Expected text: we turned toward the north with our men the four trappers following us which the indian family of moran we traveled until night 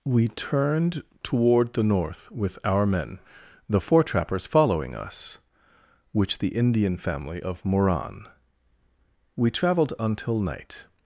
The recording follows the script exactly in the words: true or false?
true